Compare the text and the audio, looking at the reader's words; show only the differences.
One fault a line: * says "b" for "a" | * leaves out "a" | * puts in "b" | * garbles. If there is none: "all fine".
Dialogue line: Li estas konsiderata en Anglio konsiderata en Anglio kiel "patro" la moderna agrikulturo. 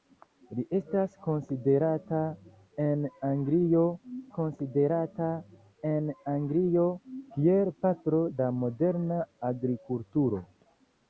all fine